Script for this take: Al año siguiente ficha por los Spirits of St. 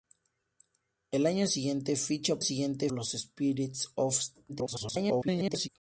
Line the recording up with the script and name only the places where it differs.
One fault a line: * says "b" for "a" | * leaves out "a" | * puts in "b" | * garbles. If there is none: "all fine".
* says "siguiente" for "por"
* garbles